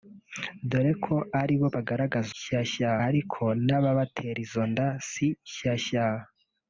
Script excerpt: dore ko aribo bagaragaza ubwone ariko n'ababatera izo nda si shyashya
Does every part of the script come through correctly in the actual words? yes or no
no